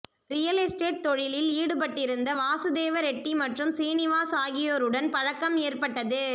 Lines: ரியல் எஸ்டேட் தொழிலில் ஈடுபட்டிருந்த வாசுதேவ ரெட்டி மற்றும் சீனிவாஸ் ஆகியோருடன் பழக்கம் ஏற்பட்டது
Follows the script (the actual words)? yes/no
yes